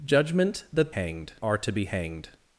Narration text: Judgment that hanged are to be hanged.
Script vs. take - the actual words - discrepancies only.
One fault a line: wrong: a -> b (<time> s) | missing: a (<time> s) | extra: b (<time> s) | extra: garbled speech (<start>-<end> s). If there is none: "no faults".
no faults